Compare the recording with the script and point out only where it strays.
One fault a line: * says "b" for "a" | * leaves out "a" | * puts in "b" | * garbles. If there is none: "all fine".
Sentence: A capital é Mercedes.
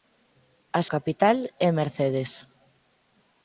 all fine